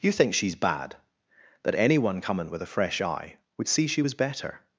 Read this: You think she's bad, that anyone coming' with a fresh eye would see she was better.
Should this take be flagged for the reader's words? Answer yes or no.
no